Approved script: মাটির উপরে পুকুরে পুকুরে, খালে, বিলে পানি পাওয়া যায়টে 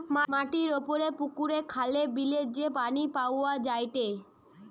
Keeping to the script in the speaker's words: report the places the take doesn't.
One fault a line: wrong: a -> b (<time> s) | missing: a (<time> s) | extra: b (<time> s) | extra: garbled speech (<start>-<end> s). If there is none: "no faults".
missing: পুকুরে (1.6 s)
extra: যে (2.6 s)